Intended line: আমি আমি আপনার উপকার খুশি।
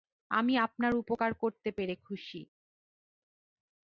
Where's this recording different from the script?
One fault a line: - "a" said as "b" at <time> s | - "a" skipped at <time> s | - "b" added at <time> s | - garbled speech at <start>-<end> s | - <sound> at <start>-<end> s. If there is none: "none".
- "আমি" skipped at 0.5 s
- "করতে পেরে" added at 1.3 s